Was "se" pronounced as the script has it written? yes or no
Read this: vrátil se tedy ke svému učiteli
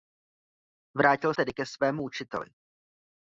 no